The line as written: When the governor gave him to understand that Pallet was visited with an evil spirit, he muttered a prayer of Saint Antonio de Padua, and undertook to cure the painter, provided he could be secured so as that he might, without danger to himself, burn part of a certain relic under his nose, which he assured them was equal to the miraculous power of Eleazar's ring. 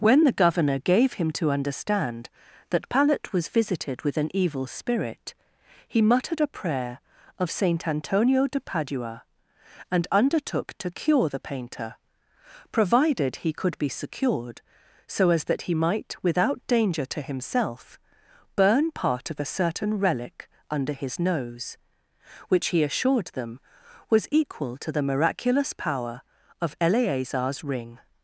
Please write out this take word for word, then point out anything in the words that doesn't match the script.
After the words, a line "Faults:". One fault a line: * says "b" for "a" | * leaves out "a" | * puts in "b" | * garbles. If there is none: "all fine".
When the governor gave him to understand that Pallet was visited with an evil spirit, he muttered a prayer of Saint Antonio de Padua, and undertook to cure the painter, provided he could be secured so as that he might, without danger to himself, burn part of a certain relic under his nose, which he assured them was equal to the miraculous power of Eleazar's ring.
Faults:
all fine